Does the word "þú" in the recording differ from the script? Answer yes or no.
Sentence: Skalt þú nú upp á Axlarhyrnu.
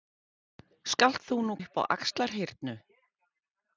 no